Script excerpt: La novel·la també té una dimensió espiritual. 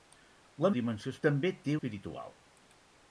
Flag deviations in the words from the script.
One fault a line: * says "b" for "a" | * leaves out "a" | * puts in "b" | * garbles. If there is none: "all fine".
* says "dimensió" for "novel·la"
* leaves out "una dimensió"